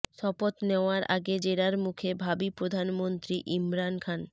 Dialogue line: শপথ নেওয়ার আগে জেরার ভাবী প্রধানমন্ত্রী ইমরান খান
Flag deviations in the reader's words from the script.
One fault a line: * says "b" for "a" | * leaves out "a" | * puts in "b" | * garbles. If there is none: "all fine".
* puts in "মুখে"